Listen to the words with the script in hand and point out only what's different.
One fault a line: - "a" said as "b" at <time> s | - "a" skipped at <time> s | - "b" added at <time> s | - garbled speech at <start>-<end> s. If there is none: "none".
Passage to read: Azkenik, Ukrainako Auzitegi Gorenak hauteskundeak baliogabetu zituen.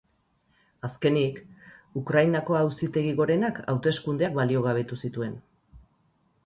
none